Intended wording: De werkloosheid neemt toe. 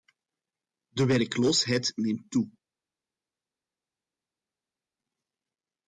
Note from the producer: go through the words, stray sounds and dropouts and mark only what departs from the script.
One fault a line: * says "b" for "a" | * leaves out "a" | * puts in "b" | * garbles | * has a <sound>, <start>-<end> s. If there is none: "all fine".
all fine